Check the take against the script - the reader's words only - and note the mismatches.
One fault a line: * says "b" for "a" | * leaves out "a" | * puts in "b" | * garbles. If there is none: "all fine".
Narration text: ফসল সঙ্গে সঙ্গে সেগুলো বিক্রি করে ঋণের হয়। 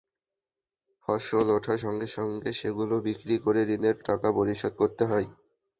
* puts in "ওঠার"
* puts in "টাকা পরিশোধ করতে"